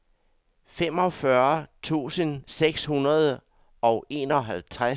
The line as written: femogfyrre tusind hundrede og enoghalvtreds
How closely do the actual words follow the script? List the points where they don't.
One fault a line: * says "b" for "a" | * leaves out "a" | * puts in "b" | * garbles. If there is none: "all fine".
* puts in "seks"